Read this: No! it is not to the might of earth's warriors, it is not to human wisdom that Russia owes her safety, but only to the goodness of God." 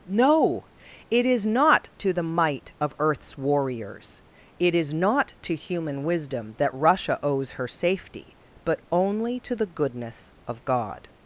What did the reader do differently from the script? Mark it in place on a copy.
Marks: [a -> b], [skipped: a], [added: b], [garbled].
No! it is not to the might of earth's warriors, it is not to human wisdom that Russia owes her safety, but only to the goodness of God."